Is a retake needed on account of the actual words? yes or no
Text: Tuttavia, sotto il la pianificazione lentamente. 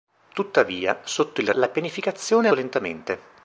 no